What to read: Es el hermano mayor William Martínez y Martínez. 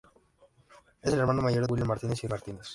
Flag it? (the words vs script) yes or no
no